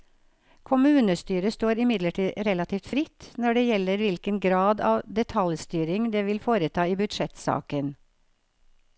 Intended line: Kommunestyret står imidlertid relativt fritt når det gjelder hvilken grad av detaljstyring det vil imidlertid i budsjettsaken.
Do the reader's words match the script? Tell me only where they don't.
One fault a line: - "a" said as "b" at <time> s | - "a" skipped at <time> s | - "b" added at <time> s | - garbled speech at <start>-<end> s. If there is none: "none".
- "imidlertid" said as "foreta" at 6.4 s